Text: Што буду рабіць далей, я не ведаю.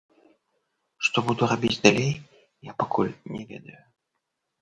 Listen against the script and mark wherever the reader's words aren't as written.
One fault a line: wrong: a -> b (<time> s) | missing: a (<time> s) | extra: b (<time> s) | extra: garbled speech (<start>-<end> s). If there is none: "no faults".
extra: пакуль (2.8 s)